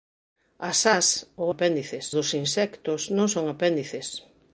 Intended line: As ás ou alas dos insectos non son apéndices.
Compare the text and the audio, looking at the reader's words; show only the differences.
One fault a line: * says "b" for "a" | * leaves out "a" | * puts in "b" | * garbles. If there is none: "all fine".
* says "apéndices" for "alas"